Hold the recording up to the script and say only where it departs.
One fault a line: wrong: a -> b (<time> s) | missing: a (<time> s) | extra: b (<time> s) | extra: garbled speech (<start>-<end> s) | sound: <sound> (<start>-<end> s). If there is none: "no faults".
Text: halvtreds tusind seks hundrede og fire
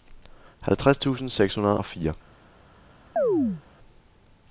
sound: chirp (3.2-3.6 s)